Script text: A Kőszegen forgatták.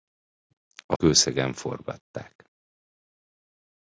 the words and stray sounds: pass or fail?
pass